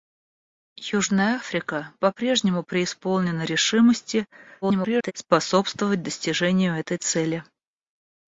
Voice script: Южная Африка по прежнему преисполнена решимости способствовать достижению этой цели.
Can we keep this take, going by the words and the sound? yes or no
no